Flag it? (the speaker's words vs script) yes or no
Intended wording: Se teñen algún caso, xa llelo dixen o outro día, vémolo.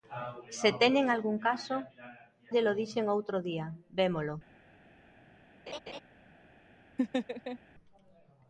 yes